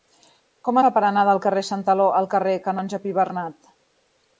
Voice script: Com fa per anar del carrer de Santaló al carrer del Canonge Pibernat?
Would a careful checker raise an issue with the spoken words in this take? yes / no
no